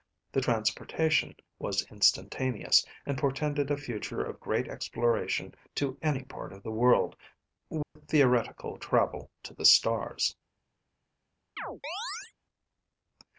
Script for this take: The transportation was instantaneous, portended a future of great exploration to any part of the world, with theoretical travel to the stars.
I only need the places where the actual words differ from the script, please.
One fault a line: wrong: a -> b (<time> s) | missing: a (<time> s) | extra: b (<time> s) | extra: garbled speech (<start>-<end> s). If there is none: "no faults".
extra: and (3.0 s)